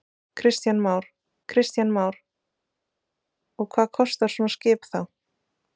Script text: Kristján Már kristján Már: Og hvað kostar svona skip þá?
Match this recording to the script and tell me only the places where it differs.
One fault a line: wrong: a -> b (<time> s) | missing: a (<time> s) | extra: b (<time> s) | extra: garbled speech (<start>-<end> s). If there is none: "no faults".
no faults